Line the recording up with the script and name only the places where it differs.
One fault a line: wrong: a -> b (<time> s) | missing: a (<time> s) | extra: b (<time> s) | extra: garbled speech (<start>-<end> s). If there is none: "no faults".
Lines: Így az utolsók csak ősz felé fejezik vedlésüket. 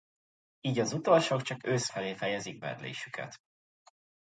no faults